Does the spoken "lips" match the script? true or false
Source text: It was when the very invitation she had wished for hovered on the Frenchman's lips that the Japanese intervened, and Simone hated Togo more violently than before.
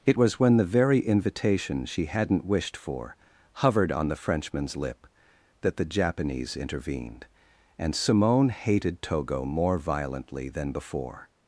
false